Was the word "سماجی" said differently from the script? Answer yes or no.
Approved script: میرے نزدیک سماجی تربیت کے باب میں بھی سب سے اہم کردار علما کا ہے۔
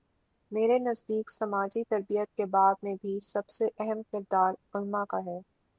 no